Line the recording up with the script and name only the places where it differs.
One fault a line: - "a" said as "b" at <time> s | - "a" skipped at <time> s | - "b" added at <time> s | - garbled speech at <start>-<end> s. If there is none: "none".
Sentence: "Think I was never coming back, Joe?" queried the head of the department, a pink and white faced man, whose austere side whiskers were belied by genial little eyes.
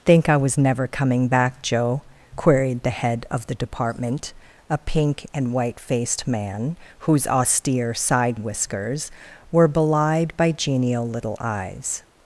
none